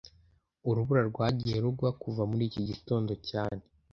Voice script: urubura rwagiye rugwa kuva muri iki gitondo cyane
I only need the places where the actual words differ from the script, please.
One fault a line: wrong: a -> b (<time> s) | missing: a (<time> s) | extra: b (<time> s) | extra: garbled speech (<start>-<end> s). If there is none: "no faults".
no faults